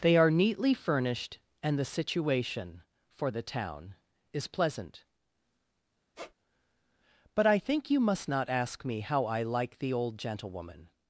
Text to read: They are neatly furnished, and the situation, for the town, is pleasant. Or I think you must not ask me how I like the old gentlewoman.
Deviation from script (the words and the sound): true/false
true